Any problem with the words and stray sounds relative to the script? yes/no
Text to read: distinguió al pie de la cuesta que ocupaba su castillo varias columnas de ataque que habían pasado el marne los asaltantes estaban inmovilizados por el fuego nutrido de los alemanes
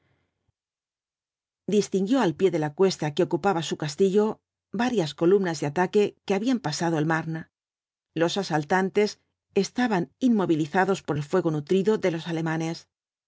no